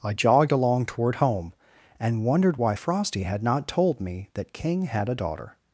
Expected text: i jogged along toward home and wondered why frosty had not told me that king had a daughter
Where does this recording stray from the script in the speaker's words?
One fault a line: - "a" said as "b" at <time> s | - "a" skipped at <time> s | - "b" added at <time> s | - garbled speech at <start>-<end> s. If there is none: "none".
none